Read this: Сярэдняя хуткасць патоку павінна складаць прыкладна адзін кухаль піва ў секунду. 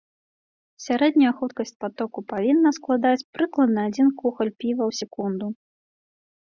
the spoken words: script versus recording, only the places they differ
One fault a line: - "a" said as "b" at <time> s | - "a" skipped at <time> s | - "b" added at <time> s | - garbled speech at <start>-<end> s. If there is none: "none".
none